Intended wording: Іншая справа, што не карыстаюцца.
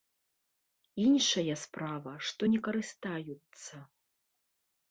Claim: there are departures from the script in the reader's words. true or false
false